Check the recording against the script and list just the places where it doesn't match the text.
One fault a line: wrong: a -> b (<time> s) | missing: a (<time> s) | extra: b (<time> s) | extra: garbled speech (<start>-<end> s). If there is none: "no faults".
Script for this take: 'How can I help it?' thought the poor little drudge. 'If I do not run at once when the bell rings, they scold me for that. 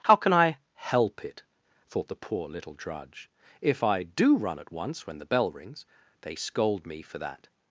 missing: not (4.3 s)